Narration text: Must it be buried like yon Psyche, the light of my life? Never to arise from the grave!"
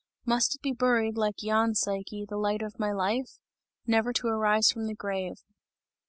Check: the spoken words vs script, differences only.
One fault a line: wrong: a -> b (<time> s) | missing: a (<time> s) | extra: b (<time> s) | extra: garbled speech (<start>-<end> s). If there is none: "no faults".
no faults